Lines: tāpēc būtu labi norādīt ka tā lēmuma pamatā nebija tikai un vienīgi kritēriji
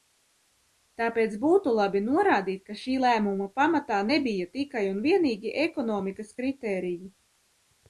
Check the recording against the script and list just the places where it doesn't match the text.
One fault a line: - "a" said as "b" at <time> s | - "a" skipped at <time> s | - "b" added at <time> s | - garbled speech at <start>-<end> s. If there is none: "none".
- "tā" said as "šī" at 2.9 s
- "ekonomikas" added at 5.7 s